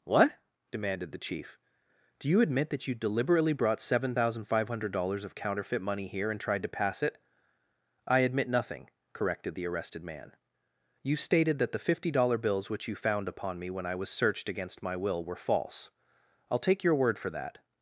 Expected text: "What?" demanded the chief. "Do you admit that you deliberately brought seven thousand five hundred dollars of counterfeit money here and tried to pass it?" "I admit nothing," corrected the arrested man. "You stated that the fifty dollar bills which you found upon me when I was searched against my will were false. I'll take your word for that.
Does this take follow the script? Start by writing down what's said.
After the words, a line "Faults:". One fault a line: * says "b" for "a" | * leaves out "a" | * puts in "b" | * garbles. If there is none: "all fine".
"What?" demanded the chief. "Do you admit that you deliberately brought seven thousand five hundred dollars of counterfeit money here and tried to pass it?" "I admit nothing," corrected the arrested man. "You stated that the fifty dollar bills which you found upon me when I was searched against my will were false. I'll take your word for that.
Faults:
all fine